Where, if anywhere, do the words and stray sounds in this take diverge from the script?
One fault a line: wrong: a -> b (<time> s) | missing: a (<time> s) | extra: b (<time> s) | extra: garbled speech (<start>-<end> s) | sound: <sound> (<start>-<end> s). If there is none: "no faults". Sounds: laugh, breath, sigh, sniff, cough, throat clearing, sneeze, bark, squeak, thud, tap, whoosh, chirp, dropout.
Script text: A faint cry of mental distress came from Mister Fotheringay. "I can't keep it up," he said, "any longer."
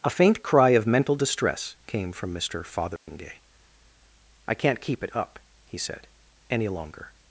sound: dropout (3.0-3.1 s)